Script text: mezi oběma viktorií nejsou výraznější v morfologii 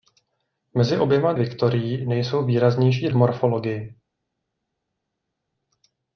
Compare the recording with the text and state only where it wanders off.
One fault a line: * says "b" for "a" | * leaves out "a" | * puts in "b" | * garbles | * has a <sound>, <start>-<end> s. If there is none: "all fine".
all fine